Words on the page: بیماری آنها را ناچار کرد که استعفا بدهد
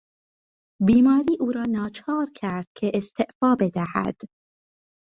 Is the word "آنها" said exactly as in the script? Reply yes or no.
no